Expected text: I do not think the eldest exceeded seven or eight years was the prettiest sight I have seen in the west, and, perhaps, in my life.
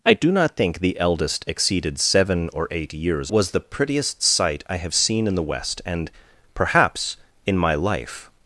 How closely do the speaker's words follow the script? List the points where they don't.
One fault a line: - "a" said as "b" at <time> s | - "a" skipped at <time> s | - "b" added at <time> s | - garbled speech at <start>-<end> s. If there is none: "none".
none